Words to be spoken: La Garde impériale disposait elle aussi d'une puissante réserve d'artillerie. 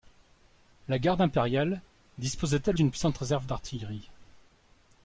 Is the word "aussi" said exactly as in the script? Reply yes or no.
no